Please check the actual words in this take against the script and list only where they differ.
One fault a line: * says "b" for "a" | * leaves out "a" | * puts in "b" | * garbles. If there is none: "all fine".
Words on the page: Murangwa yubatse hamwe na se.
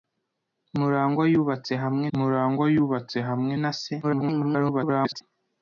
* puts in "murangwa yubatse hamwe"
* garbles